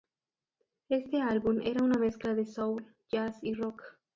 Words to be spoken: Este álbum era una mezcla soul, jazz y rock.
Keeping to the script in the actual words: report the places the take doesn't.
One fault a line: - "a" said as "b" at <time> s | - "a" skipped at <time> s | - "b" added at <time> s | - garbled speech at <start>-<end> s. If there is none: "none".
- "de" added at 2.3 s